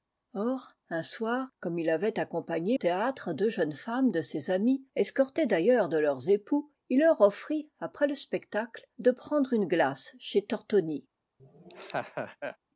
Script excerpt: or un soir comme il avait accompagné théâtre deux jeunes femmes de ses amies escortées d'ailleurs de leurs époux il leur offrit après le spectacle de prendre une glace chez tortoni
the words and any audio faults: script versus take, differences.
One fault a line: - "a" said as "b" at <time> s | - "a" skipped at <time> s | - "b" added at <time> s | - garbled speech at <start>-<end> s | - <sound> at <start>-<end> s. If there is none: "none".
- laugh at 11.4-12.6 s